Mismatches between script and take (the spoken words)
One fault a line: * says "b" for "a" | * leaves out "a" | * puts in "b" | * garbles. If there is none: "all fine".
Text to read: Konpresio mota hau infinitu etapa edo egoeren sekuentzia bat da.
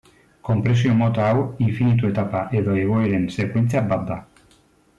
all fine